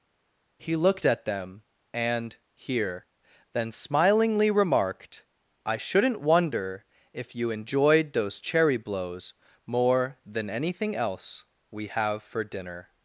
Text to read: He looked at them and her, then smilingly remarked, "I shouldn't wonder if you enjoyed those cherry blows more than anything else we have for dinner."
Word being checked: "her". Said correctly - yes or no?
no